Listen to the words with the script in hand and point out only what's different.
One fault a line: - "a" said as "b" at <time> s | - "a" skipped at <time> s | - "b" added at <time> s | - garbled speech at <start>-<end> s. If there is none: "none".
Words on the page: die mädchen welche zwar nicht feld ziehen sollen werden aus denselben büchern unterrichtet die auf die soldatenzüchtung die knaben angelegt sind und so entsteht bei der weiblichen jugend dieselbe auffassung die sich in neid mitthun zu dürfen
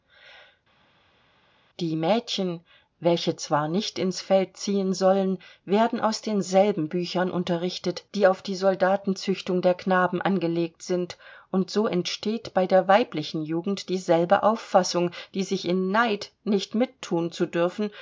- "ins" added at 4.0 s
- "die" said as "der" at 9.6 s
- "nicht" added at 16.5 s